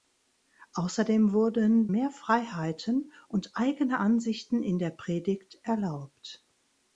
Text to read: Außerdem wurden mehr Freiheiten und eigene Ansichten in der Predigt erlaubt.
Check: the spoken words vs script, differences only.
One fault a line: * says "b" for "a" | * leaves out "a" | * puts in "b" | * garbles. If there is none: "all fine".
all fine